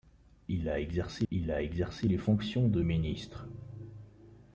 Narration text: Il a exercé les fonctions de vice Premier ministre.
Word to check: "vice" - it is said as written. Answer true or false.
false